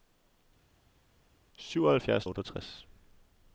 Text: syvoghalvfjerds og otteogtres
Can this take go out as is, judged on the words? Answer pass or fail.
pass